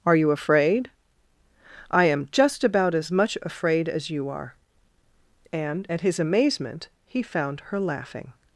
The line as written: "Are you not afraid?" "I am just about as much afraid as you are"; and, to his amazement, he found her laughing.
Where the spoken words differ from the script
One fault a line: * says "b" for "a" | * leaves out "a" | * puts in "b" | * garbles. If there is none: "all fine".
* leaves out "not"
* says "at" for "to"